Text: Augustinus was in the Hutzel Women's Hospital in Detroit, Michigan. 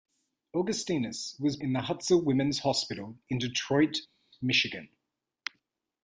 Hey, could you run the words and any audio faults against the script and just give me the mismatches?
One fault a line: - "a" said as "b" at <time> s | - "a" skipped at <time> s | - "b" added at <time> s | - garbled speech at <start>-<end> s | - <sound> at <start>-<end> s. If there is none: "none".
none